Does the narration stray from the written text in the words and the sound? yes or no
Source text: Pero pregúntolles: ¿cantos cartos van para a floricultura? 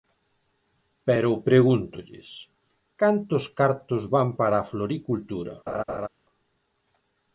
yes